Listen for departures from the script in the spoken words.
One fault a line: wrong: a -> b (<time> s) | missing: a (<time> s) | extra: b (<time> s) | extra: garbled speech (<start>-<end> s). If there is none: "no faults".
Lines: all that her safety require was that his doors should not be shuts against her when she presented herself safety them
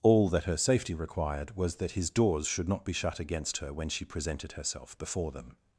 wrong: require -> required (0.9 s)
wrong: shuts -> shut (2.9 s)
wrong: safety -> before (5.0 s)